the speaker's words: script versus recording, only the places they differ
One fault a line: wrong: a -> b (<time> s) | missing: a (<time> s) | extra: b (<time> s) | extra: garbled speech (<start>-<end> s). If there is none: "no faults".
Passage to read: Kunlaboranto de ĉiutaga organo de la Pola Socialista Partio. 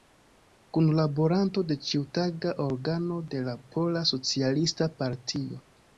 no faults